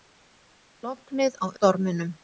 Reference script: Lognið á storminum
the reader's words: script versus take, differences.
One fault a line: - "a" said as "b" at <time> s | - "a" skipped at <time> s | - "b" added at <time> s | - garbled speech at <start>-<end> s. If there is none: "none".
none